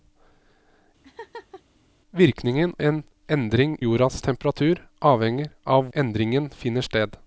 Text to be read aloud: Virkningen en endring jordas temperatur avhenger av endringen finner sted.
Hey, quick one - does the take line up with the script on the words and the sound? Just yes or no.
no